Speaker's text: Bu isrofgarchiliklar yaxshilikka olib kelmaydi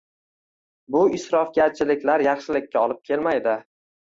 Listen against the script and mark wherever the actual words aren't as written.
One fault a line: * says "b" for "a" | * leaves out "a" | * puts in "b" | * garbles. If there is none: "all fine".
all fine